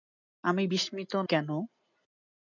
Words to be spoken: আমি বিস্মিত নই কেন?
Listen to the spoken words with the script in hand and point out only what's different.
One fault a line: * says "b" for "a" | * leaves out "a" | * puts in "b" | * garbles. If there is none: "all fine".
* leaves out "নই"